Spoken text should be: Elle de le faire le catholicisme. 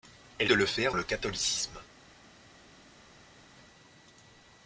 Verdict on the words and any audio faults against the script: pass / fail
pass